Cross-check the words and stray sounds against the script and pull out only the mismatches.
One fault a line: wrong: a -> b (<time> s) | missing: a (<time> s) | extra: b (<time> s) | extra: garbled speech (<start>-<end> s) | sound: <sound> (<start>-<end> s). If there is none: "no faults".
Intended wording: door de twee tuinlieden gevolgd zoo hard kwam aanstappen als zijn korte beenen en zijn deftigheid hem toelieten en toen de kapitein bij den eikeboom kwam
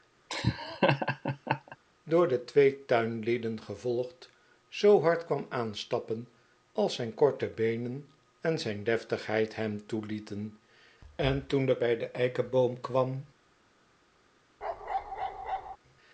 sound: laugh (0.3-1.8 s)
missing: kapitein (11.8 s)
sound: bark (14.6-15.8 s)